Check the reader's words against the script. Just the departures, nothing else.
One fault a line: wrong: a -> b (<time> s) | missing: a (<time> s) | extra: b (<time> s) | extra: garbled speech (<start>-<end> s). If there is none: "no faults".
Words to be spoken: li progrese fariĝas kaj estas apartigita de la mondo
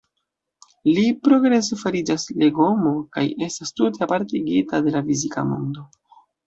extra: legomo (2.5 s)
extra: tute (3.8 s)
extra: fizika (5.1 s)